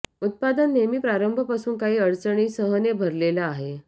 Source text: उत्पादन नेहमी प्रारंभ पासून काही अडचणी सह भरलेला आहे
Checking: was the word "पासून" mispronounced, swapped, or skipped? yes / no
no